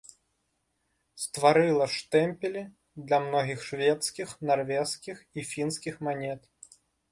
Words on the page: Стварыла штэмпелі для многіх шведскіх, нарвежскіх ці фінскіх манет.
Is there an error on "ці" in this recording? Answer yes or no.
yes